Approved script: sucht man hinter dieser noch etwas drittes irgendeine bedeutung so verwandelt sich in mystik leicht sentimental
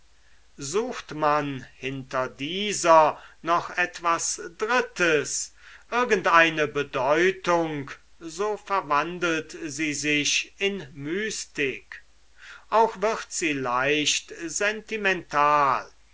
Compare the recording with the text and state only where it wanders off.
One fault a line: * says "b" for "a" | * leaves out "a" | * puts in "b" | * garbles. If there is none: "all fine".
* puts in "sie"
* puts in "auch wird sie"